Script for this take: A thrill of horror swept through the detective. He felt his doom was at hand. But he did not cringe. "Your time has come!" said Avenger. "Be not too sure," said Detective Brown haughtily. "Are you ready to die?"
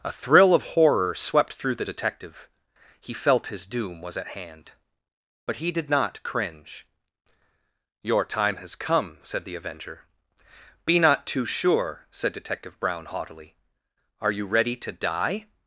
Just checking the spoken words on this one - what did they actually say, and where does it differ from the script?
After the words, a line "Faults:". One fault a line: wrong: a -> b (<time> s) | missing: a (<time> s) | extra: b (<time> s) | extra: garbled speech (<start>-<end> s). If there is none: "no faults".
A thrill of horror swept through the detective. He felt his doom was at hand. But he did not cringe. "Your time has come!" said the Avenger. "Be not too sure," said Detective Brown haughtily. "Are you ready to die?"
Faults:
extra: the (9.4 s)